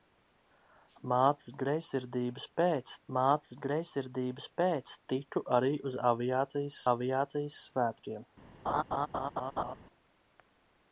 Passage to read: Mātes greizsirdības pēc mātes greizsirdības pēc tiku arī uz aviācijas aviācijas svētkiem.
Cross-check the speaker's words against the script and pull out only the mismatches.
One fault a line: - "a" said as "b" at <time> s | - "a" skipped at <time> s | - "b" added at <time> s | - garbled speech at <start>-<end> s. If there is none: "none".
none